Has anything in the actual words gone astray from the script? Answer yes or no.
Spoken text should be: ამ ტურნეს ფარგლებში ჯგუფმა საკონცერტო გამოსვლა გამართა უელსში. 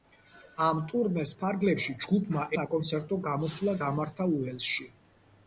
no